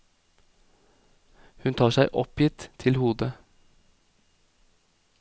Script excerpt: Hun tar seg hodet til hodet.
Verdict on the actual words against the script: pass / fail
fail